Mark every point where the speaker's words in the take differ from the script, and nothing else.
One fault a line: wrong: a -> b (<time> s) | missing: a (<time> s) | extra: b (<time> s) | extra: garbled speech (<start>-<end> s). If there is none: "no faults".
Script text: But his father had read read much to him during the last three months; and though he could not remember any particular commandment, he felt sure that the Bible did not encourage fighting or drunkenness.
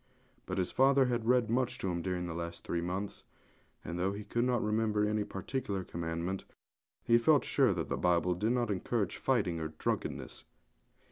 missing: read (1.5 s)